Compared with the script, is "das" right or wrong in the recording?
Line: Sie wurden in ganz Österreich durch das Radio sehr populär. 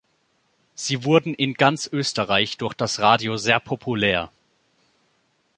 right